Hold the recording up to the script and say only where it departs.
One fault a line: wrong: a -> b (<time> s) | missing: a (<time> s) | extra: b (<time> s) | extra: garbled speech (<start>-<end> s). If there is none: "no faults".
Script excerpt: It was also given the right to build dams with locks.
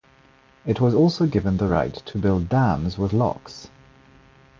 no faults